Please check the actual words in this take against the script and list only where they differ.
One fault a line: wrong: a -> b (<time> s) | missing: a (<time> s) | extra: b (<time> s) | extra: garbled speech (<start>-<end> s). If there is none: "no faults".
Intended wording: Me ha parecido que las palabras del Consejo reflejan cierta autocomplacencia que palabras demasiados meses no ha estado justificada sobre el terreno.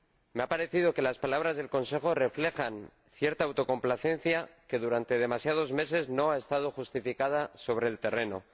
wrong: palabras -> durante (4.8 s)